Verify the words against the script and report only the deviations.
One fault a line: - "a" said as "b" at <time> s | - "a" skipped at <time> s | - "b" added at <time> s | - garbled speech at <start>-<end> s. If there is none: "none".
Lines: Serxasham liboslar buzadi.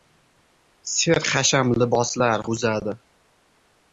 none